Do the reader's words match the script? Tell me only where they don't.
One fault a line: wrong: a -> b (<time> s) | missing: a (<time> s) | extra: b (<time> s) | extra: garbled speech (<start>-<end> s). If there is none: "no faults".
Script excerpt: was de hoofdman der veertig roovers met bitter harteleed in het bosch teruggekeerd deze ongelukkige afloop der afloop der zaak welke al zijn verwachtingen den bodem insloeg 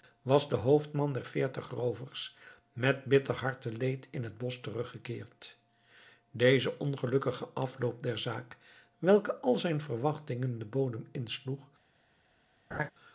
missing: afloop der (8.2 s)